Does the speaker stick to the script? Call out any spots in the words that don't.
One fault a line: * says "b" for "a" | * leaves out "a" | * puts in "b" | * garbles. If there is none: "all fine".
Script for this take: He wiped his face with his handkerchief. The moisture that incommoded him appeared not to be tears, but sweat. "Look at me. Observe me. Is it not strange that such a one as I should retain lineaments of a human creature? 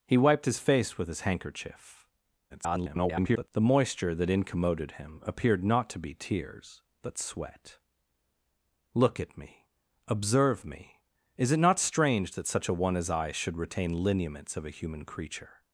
* garbles